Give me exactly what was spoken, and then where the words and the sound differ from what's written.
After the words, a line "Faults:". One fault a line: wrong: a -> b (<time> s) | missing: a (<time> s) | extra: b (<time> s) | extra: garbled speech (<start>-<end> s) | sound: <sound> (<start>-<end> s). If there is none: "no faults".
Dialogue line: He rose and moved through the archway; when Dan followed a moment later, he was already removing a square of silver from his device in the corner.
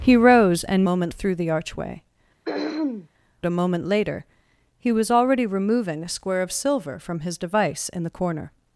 He rose and moment through the archway; a moment later, he was already removing a square of silver from his device in the corner.
Faults:
wrong: moved -> moment (0.9 s)
missing: when Dan followed (2.0 s)
sound: throat clearing (2.5-3.1 s)